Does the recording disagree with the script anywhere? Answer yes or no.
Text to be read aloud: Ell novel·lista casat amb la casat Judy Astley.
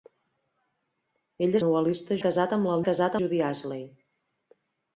no